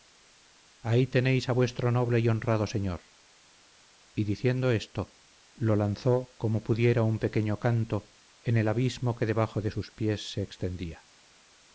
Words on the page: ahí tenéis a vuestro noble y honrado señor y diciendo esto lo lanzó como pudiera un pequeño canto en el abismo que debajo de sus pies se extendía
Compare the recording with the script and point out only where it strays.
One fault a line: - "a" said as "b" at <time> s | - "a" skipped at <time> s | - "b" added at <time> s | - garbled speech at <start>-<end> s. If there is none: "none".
none